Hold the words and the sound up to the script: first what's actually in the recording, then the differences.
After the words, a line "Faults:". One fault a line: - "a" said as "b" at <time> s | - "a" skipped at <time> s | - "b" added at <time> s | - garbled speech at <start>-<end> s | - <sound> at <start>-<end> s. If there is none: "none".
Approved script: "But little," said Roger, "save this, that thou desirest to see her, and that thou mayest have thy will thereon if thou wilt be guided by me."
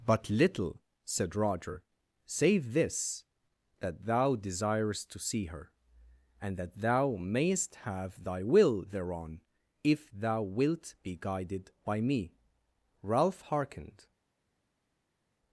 "But little," said Roger, "save this, that thou desirest to see her, and that thou mayest have thy will thereon if thou wilt be guided by me." Ralph hearkened
Faults:
- "Ralph hearkened" added at 13.0 s